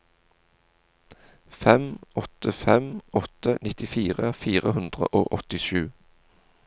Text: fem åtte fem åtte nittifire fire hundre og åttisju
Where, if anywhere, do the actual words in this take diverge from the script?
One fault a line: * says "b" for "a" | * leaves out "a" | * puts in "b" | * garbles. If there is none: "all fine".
all fine